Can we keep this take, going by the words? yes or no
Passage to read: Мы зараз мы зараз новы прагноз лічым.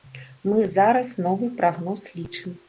no